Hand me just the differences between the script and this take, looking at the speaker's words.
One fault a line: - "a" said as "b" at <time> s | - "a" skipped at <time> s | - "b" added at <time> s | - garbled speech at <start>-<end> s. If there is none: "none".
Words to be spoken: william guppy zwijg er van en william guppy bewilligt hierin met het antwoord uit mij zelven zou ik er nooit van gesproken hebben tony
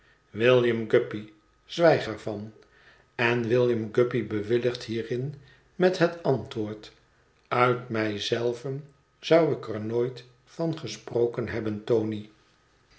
none